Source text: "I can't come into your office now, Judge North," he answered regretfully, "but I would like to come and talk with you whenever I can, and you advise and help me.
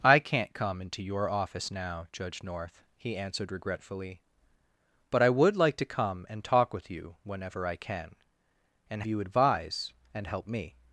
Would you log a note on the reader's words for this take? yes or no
no